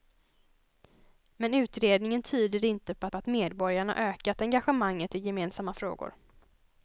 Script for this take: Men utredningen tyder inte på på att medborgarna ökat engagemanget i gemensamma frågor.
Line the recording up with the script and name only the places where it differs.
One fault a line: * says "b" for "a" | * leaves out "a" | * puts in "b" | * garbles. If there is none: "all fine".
all fine